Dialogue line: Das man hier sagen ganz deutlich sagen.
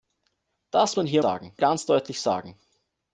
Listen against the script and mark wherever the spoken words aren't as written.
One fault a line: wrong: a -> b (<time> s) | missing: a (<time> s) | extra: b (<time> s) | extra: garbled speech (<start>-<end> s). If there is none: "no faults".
no faults